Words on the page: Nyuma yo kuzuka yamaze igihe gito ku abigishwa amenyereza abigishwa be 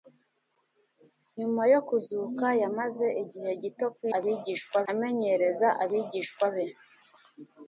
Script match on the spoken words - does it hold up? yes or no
yes